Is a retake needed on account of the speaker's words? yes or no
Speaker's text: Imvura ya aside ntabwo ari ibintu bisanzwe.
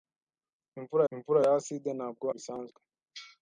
yes